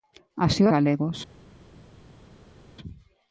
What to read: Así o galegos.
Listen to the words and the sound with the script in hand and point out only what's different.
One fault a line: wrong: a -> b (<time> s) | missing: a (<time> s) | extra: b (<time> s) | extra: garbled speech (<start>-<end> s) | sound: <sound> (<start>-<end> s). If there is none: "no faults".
no faults